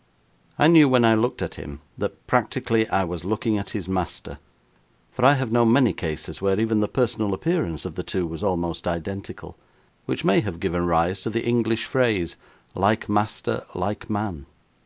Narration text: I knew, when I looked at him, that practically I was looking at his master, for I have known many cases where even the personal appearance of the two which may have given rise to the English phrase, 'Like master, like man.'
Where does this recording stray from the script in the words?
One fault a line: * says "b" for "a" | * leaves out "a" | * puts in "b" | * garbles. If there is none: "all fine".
* puts in "was almost identical"